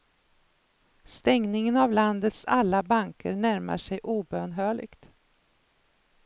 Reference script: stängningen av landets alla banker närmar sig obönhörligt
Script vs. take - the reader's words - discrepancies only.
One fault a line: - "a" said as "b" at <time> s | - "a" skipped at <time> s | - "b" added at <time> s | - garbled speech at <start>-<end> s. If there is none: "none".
none